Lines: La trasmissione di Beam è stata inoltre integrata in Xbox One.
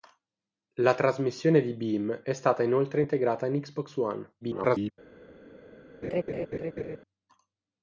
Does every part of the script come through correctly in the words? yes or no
no